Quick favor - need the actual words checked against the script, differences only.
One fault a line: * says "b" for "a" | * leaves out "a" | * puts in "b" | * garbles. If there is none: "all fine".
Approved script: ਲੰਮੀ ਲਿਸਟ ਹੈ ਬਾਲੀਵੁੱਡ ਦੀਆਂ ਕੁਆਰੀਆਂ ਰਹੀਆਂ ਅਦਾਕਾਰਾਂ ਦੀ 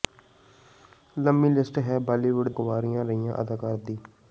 * leaves out "ਦੀਆਂ"